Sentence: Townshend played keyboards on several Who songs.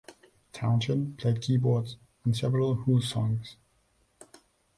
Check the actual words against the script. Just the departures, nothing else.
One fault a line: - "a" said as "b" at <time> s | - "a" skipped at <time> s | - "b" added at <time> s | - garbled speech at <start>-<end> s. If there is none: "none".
none